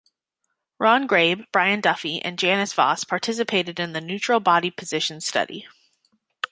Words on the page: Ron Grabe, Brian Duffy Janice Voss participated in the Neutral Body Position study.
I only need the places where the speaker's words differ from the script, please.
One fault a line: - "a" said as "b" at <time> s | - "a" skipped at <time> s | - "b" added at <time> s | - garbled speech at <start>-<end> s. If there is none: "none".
- "and" added at 2.2 s